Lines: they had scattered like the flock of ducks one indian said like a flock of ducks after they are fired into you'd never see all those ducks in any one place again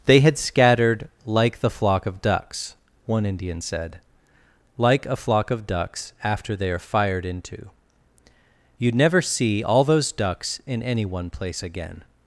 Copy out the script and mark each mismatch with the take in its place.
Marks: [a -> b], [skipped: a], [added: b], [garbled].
they had scattered like the flock of ducks one indian said like a flock of ducks after they are fired into you'd never see all those ducks in any one place again